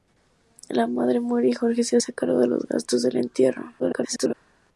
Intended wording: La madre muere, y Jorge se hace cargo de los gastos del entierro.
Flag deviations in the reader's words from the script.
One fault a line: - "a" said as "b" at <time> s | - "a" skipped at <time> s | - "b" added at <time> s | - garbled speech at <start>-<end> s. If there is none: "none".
- garbled speech at 3.8-4.3 s